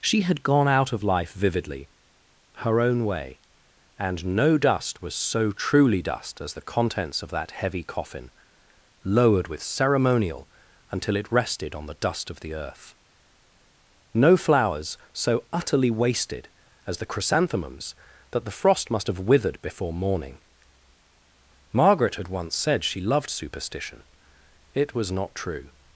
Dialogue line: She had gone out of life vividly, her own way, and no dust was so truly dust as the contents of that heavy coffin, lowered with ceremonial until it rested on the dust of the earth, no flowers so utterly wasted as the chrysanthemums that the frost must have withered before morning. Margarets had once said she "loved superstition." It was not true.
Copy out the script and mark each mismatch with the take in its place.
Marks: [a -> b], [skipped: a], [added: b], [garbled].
She had gone out of life vividly, her own way, and no dust was so truly dust as the contents of that heavy coffin, lowered with ceremonial until it rested on the dust of the earth, no flowers so utterly wasted as the chrysanthemums that the frost must have withered before morning. [Margarets -> Margaret] had once said she "loved superstition." It was not true.